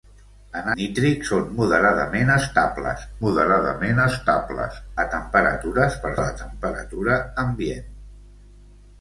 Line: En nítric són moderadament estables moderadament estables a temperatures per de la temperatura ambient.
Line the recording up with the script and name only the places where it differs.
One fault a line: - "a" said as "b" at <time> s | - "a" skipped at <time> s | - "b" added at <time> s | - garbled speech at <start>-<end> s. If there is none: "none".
none